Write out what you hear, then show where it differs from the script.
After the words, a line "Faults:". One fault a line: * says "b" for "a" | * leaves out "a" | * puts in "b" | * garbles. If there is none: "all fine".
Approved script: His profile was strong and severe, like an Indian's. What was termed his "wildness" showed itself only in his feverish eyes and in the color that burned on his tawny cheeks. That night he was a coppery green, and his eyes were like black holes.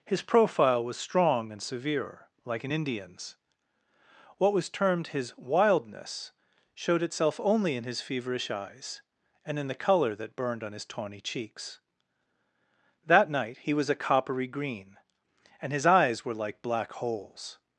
His profile was strong and severe, like an Indian's. What was termed his "wildness" showed itself only in his feverish eyes and in the color that burned on his tawny cheeks. That night he was a coppery green, and his eyes were like black holes.
Faults:
all fine